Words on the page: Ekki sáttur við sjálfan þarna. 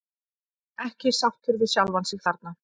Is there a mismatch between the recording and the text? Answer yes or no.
yes